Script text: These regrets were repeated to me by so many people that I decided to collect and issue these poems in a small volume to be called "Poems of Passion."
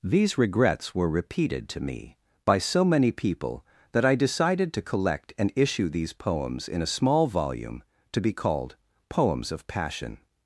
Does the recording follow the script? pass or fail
pass